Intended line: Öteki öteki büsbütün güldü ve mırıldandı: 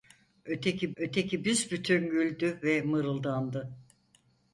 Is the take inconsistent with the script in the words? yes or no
no